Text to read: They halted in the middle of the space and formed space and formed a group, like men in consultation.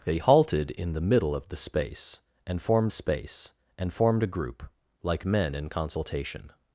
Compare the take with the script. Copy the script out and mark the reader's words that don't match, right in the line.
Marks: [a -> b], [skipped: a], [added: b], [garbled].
They halted in the middle of the space and formed space and formed a group, like men in consultation.